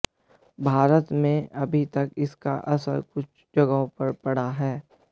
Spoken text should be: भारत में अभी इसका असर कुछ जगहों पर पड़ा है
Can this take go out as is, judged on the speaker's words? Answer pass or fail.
fail